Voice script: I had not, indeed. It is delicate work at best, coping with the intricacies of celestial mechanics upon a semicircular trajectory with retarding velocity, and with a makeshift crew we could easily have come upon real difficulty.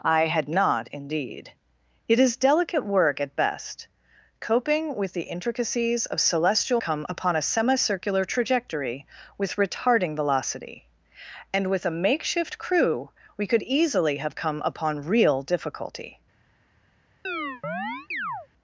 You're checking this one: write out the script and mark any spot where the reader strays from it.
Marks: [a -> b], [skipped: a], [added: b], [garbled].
I had not, indeed. It is delicate work at best, coping with the intricacies of celestial [mechanics -> come] upon a semicircular trajectory with retarding velocity, and with a makeshift crew we could easily have come upon real difficulty.